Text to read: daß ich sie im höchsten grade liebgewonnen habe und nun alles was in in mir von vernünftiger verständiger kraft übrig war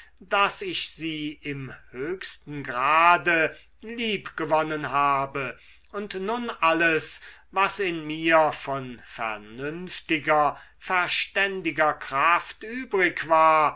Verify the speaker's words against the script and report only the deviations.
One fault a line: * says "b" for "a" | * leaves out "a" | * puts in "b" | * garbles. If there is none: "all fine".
* leaves out "in"